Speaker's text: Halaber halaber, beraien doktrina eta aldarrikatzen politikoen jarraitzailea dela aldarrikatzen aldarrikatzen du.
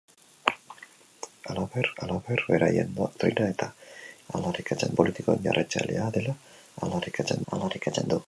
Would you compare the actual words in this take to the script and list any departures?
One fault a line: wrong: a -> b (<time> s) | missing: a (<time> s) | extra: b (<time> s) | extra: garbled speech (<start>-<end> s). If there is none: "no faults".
no faults